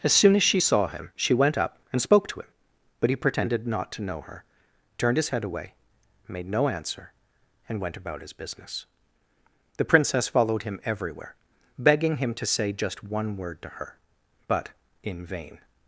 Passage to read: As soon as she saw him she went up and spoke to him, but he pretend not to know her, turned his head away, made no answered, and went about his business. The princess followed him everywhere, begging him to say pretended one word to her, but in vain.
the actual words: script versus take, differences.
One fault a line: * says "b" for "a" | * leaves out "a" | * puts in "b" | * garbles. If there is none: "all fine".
* says "pretended" for "pretend"
* says "answer" for "answered"
* says "just" for "pretended"